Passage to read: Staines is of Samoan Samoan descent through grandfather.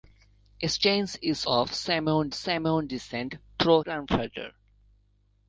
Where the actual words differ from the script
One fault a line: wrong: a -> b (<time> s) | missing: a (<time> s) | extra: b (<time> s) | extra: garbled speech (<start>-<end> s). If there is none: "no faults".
no faults